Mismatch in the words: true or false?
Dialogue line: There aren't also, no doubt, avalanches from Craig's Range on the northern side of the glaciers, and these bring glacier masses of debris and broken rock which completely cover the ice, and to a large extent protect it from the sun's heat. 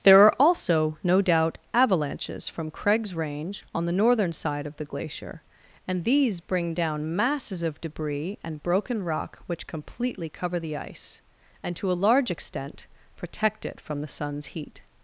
true